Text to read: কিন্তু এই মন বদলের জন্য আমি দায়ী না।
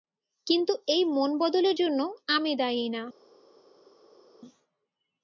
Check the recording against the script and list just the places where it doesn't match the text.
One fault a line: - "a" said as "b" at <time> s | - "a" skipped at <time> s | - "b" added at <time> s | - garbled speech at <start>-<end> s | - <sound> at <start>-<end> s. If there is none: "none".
none